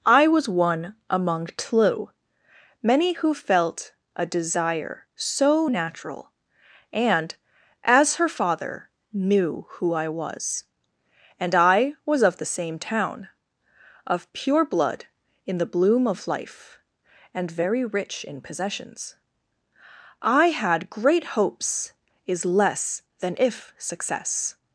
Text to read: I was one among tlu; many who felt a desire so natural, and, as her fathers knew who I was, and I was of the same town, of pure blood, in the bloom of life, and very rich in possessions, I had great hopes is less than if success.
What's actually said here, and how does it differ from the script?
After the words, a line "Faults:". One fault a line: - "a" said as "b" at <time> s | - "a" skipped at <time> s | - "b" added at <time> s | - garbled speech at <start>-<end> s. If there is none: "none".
I was one among tlu; many who felt a desire so natural, and, as her father knew who I was, and I was of the same town, of pure blood, in the bloom of life, and very rich in possessions, I had great hopes is less than if success.
Faults:
- "fathers" said as "father" at 8.3 s